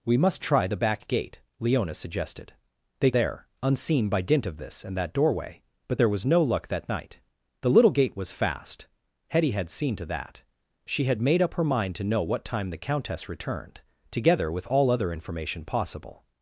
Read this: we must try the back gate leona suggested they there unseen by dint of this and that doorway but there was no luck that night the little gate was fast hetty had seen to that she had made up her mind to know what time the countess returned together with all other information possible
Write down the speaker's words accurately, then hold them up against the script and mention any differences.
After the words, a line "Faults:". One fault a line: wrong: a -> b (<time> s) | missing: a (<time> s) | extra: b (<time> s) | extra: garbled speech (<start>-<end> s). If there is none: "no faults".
we must try the back gate leona suggested they there unseen by dint of this and that doorway but there was no luck that night the little gate was fast hetty had seen to that she had made up her mind to know what time the countess returned together with all other information possible
Faults:
no faults